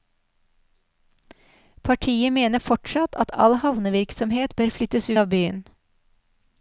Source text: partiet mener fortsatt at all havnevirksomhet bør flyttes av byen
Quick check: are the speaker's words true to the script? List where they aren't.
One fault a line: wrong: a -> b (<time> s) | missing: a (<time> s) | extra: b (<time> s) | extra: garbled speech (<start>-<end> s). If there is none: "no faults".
no faults